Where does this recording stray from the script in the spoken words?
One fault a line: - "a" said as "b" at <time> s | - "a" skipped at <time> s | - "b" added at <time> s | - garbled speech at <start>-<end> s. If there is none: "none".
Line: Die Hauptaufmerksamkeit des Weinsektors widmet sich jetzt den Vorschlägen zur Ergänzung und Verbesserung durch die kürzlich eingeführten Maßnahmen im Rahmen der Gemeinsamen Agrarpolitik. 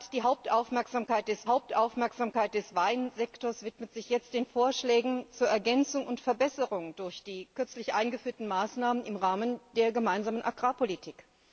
- "Hauptaufmerksamkeit des" added at 1.4 s